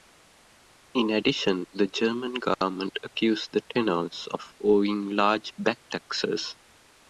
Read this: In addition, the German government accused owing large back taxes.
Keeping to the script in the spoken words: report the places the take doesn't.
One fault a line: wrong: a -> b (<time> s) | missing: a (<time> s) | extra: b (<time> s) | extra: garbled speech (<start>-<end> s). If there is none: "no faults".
extra: the tenors of (3.5 s)